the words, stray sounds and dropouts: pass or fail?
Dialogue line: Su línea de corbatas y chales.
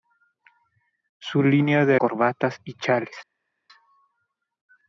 pass